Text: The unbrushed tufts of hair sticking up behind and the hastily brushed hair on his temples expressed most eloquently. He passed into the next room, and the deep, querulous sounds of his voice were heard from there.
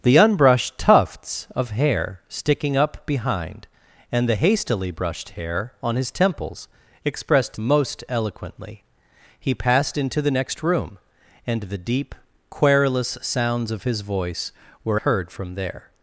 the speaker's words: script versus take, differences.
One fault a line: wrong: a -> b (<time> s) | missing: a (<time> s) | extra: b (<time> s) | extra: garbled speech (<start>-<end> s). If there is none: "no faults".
no faults